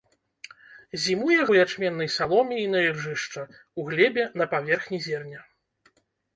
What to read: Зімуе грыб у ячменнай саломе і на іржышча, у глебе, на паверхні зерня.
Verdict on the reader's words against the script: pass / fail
fail